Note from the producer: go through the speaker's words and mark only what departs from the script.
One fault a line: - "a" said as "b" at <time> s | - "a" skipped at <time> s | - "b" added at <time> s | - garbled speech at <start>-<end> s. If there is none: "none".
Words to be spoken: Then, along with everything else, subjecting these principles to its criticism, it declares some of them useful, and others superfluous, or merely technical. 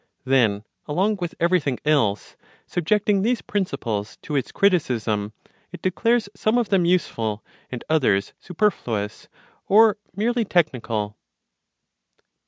none